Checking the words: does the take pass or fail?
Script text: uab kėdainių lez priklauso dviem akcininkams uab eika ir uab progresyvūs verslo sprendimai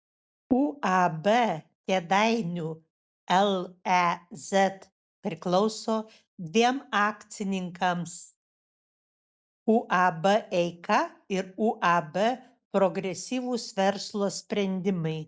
pass